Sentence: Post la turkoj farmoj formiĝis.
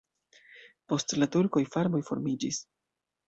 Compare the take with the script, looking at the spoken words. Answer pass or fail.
pass